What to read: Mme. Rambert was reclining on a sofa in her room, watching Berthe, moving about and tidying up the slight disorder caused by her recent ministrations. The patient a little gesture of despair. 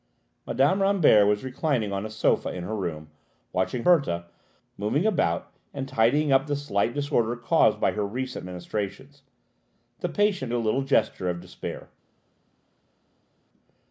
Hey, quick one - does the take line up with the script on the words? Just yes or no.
yes